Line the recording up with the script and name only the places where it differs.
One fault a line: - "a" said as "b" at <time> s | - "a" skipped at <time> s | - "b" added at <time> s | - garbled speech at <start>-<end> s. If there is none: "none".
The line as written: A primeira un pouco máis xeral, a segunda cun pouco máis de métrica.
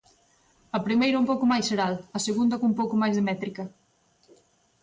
none